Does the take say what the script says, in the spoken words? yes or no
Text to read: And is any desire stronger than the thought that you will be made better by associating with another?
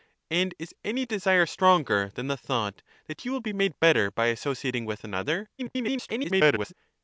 no